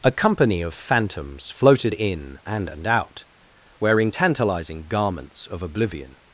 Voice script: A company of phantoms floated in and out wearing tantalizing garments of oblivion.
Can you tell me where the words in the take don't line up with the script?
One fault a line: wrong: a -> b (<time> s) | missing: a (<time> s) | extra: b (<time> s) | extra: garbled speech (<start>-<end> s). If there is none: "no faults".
extra: and (2.7 s)